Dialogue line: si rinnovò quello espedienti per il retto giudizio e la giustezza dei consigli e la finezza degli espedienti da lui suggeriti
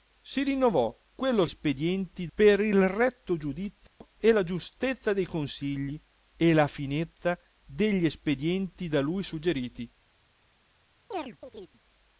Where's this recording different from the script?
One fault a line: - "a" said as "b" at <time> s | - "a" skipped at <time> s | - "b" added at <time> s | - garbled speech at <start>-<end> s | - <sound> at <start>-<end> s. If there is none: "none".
- dropout at 3.9-4.0 s
- chirp at 11.1-11.8 s